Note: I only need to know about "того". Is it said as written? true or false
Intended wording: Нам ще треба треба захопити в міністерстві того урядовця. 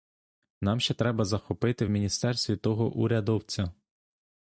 true